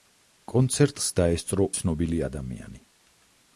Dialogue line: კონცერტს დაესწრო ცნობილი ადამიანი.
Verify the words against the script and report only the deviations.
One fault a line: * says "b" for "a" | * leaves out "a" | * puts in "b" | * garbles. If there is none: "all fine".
all fine